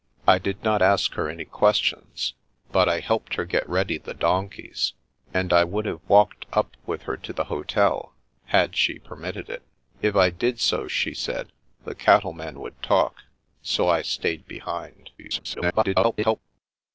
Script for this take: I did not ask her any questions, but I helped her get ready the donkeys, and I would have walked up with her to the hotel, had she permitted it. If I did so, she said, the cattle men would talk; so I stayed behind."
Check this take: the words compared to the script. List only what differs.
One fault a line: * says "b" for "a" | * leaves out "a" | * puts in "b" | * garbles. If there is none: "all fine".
* garbles